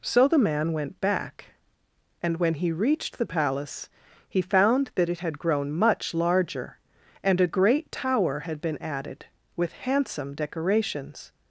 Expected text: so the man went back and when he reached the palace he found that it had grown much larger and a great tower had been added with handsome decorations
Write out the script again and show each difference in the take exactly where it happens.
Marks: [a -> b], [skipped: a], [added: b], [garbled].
so the man went back and when he reached the palace he found that it had grown much larger and a great tower had been added with handsome decorations